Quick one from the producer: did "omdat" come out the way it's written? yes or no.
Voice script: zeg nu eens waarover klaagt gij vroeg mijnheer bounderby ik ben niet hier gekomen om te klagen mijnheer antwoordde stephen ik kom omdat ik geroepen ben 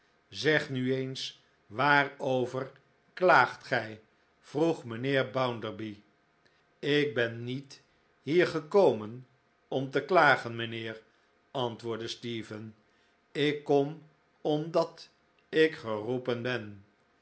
yes